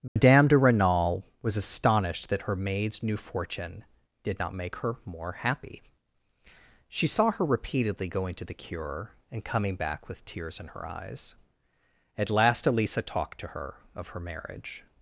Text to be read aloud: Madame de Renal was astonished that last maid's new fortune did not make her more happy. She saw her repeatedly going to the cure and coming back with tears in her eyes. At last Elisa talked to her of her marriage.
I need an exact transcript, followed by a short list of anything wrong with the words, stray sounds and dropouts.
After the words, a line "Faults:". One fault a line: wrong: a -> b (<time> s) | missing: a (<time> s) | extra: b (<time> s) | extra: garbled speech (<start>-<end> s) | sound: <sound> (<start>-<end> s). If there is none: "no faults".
Madame de Renal was astonished that her maid's new fortune did not make her more happy. She saw her repeatedly going to the cure and coming back with tears in her eyes. At last Elisa talked to her of her marriage.
Faults:
sound: dropout (0.1-0.2 s)
wrong: last -> her (2.4 s)